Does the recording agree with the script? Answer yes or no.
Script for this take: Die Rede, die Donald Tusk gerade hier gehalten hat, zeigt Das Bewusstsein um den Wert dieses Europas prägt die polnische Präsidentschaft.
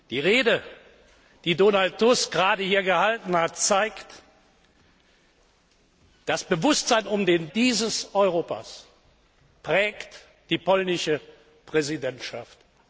no